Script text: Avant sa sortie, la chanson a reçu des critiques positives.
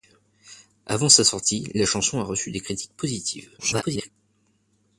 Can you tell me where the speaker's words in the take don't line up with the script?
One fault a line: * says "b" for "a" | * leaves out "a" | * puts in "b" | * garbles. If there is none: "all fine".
* garbles